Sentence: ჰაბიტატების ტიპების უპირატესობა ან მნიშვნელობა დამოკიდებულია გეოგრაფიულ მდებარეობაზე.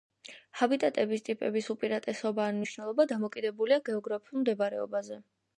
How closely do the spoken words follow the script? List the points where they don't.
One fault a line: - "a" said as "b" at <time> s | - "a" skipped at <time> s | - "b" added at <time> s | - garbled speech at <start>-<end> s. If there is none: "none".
none